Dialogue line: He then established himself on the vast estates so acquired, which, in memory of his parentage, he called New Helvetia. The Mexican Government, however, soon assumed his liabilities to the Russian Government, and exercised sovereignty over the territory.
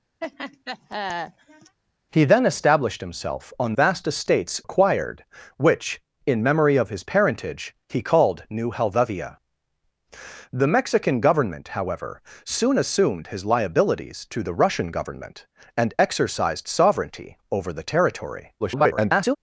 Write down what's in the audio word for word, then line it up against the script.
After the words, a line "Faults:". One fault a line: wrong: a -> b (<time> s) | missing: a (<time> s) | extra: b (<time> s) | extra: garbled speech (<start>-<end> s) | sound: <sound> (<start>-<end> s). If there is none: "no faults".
He then established himself on vast estates acquired, which, in memory of his parentage, he called New Helvetia. The Mexican Government, however, soon assumed his liabilities to the Russian Government, and exercised sovereignty over the territory. [garbled]
Faults:
sound: laugh (0.2-1.8 s)
missing: the (3.7 s)
missing: so (4.6 s)
extra: garbled speech (18.6-19.4 s)